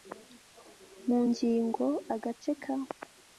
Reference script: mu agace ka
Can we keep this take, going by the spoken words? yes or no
no